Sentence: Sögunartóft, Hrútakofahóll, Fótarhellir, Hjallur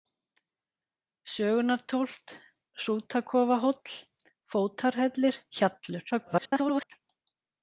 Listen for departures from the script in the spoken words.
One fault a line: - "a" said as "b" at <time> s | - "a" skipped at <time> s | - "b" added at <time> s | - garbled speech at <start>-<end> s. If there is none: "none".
- garbled speech at 6.1-6.9 s